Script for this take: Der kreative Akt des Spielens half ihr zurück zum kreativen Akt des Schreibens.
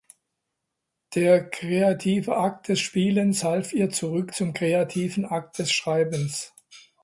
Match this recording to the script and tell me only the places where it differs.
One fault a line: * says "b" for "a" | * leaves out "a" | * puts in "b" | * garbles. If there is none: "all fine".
all fine